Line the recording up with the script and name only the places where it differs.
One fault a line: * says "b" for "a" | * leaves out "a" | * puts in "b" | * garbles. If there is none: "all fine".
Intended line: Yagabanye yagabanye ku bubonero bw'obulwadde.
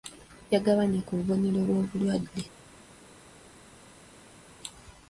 * leaves out "yagabanye"